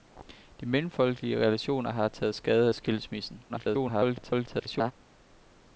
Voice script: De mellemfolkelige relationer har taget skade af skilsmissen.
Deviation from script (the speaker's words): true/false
true